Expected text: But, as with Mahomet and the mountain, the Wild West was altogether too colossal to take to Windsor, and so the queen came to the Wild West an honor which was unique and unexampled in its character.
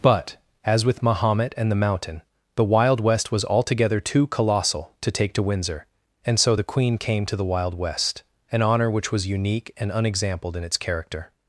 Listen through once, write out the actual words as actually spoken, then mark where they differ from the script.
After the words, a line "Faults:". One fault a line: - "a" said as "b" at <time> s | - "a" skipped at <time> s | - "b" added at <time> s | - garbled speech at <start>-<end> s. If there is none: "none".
But, as with Mahomet and the mountain, the Wild West was altogether too colossal to take to Windsor, and so the queen came to the Wild West an honor which was unique and unexampled in its character.
Faults:
none